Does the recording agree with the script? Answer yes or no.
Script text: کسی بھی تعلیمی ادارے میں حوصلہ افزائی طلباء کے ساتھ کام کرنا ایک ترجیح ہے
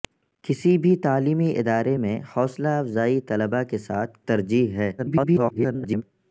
no